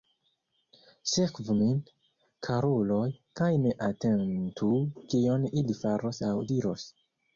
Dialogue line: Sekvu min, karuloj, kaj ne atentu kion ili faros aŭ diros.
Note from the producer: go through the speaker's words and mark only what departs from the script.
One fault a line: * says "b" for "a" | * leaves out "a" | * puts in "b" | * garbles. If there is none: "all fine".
all fine